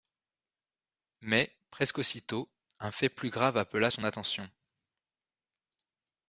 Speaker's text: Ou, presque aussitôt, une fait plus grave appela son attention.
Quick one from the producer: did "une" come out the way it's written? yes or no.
no